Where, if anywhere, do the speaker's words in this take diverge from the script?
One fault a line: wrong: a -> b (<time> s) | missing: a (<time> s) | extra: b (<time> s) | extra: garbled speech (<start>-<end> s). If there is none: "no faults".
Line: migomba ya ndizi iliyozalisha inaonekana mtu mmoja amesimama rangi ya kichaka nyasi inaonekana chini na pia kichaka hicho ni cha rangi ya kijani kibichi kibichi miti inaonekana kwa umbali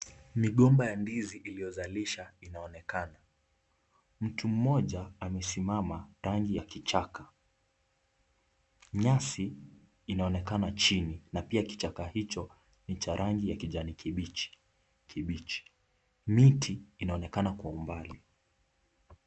no faults